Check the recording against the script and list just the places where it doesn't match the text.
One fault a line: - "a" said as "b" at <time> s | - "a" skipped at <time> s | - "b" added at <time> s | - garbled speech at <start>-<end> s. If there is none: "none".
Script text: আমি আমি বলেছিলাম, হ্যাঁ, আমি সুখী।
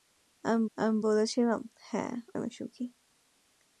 none